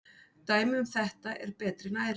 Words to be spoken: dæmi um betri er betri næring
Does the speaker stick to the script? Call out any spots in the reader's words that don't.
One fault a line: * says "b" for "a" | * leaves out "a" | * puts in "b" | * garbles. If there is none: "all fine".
* says "þetta" for "betri"